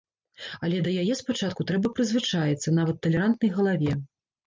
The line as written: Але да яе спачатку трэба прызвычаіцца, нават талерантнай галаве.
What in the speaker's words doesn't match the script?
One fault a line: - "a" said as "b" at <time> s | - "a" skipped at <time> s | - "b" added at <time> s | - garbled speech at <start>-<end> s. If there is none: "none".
none